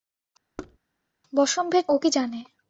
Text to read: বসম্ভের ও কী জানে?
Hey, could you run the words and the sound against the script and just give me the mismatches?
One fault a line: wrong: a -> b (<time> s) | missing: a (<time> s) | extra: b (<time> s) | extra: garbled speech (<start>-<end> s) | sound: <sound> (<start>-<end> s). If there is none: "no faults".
sound: thud (0.6-0.8 s)